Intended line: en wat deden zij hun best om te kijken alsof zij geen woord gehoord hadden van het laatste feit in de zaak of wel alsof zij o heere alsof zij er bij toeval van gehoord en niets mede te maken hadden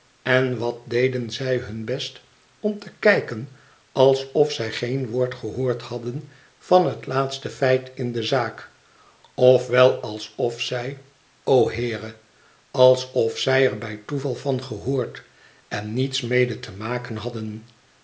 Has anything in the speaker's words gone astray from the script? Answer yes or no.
no